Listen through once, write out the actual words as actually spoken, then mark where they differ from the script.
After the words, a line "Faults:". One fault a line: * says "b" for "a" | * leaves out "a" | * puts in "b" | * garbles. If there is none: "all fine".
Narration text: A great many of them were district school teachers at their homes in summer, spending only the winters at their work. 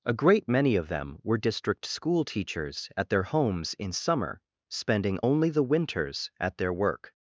A great many of them were district school teachers at their homes in summer, spending only the winters at their work.
Faults:
all fine